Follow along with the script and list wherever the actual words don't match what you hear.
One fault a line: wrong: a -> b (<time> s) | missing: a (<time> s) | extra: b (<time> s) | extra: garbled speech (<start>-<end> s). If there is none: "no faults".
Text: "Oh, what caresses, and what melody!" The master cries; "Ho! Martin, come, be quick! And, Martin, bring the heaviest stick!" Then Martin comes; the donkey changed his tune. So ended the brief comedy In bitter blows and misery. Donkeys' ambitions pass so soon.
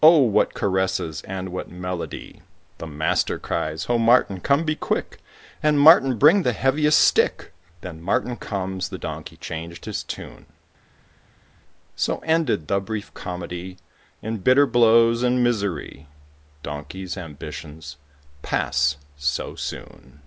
no faults